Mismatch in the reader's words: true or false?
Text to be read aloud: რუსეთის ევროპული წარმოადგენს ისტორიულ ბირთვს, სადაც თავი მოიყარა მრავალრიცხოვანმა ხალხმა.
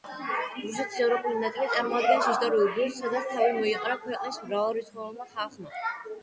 true